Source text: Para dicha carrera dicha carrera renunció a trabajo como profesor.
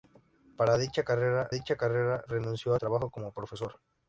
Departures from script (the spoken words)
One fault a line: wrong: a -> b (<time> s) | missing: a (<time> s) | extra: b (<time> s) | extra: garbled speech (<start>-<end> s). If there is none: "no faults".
no faults